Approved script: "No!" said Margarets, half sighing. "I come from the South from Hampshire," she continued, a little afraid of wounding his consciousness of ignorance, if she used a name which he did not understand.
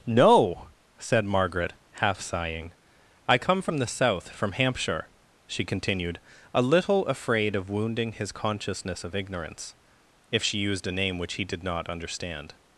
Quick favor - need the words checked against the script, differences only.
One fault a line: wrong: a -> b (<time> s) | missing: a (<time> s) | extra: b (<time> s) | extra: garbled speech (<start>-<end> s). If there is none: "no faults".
wrong: Margarets -> Margaret (1.2 s)